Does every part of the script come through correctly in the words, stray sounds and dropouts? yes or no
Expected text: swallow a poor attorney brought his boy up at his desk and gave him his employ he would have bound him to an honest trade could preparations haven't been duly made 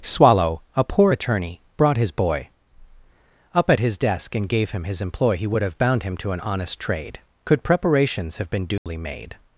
no